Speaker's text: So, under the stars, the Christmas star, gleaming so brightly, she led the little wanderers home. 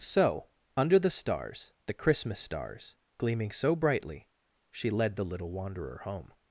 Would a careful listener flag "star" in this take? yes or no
yes